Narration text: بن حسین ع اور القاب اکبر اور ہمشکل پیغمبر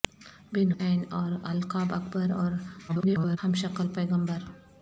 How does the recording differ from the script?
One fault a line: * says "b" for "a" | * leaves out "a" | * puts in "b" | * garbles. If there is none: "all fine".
* leaves out "حسین"
* garbles